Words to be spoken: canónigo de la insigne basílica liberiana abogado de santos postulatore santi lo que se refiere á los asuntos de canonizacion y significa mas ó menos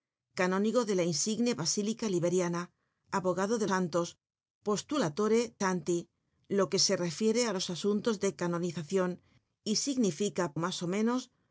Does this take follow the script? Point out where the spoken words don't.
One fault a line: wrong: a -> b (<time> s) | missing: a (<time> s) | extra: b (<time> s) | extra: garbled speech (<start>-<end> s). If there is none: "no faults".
no faults